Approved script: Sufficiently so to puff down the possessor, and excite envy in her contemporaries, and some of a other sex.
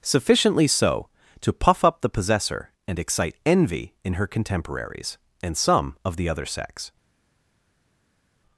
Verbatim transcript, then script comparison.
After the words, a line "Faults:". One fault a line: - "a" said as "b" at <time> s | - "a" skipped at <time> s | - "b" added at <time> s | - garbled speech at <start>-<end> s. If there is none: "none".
Sufficiently so to puff up the possessor, and excite envy in her contemporaries, and some of the other sex.
Faults:
- "down" said as "up" at 1.9 s
- "a" said as "the" at 6.2 s